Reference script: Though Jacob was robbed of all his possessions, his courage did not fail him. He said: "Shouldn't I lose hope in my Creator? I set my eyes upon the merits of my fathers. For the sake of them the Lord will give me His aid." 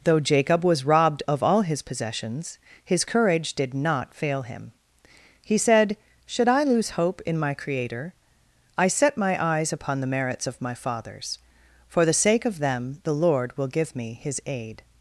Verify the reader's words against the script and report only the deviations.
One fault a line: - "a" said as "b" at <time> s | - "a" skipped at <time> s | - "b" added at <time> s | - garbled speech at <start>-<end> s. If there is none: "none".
- "Shouldn't" said as "Should" at 6.2 s